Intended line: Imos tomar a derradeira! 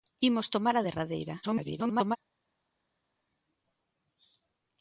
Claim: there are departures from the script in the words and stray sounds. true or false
true